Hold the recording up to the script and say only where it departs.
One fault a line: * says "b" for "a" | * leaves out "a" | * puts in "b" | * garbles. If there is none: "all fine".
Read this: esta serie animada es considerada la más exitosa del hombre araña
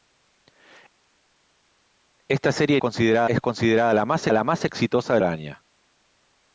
* says "considerada" for "animada"
* puts in "la más"
* leaves out "hombre"